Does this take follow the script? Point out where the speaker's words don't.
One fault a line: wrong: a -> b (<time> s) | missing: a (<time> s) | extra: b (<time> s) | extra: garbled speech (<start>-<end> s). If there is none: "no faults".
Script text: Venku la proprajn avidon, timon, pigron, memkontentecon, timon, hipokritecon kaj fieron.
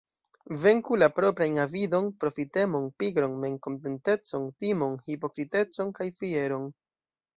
wrong: timon -> profitemon (2.2 s)